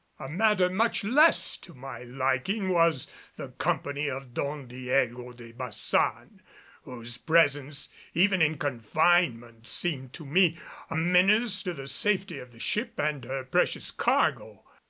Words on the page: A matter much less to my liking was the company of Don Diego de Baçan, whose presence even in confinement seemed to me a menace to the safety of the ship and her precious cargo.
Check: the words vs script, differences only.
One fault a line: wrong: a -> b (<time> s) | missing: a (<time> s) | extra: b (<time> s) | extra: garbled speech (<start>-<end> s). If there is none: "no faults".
no faults